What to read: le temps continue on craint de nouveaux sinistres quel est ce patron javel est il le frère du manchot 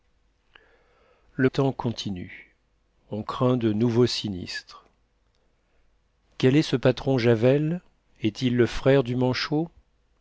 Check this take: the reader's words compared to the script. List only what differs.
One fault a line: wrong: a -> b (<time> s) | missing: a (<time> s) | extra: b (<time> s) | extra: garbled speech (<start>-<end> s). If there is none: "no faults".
no faults